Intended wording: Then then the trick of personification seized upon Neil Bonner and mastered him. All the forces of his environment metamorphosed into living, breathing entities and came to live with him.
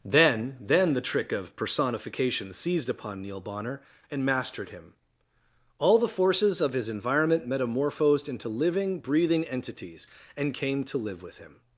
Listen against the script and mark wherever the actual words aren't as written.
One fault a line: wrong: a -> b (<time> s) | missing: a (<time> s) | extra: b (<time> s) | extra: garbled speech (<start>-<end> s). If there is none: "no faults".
no faults